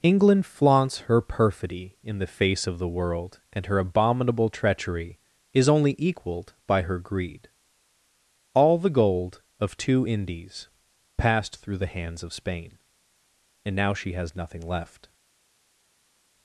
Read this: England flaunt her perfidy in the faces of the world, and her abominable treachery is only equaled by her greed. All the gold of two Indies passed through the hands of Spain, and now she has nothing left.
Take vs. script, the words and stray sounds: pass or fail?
fail